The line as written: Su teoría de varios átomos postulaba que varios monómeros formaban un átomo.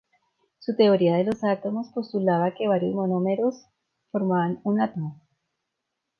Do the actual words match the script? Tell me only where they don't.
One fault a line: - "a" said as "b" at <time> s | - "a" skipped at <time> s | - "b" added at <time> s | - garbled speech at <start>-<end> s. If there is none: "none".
- "varios" said as "los" at 1.2 s